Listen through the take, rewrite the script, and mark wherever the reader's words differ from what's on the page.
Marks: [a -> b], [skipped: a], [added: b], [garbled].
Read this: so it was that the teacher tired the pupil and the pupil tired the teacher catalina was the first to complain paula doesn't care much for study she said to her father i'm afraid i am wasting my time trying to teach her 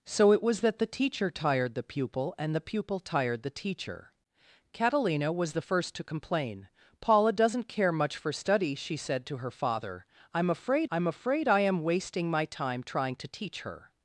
so it was that the teacher tired the pupil and the pupil tired the teacher catalina was the first to complain paula doesn't care much for study she said to her father i'm afraid [added: i'm afraid] i am wasting my time trying to teach her